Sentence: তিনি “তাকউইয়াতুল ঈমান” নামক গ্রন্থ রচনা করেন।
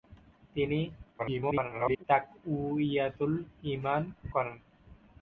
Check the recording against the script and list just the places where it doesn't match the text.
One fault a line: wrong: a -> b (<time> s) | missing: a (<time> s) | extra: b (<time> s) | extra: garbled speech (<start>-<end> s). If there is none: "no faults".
extra: garbled speech (1.2-2.0 s)
missing: নামক গ্রন্থ রচনা (4.0 s)